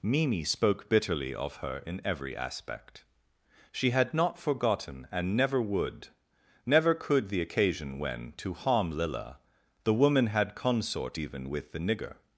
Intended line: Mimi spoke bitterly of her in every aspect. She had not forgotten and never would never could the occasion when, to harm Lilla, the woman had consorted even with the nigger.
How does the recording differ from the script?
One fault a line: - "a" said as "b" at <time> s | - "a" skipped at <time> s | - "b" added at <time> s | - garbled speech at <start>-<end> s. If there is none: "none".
- "consorted" said as "consort" at 10.6 s